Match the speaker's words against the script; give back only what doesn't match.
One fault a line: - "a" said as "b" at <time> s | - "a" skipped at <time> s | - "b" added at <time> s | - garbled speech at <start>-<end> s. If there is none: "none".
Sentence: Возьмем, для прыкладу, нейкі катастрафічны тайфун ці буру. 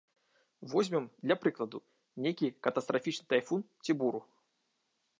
none